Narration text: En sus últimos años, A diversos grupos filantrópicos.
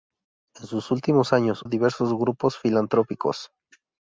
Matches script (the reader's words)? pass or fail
pass